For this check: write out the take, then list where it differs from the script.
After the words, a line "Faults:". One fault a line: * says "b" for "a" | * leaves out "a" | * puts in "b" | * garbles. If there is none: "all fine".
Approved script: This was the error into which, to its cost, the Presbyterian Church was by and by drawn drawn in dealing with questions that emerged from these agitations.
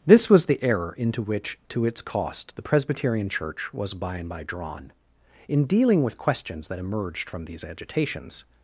This was the error into which, to its cost, the Presbyterian Church was by and by drawn in dealing with questions that emerged from these agitations.
Faults:
* leaves out "drawn"